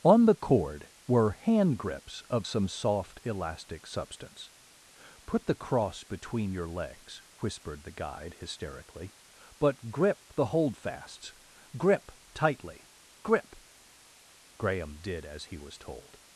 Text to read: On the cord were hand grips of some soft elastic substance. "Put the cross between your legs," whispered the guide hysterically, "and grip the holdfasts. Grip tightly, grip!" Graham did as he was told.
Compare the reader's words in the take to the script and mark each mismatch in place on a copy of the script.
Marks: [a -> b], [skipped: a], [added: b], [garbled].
On the cord were hand grips of some soft elastic substance. "Put the cross between your legs," whispered the guide hysterically, ["and -> but] grip the holdfasts. Grip tightly, grip!" Graham did as he was told.